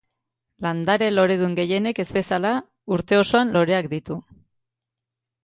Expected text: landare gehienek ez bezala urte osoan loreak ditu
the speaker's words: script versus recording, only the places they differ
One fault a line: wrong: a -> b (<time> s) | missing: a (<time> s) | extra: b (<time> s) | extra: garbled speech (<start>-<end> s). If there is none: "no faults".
extra: loredun (1.1 s)